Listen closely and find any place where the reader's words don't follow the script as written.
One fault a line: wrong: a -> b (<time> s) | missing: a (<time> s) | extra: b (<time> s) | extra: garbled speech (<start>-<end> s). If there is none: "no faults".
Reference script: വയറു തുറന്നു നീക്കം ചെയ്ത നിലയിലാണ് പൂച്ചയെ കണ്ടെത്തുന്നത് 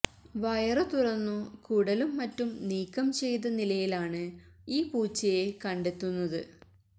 extra: കുടലും മറ്റും (1.7 s)
extra: ഈ (4.7 s)